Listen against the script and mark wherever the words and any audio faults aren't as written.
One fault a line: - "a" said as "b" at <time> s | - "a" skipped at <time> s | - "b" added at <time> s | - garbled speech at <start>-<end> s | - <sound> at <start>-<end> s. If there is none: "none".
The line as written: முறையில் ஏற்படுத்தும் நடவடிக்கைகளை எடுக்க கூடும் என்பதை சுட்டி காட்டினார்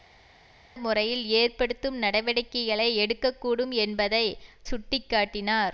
none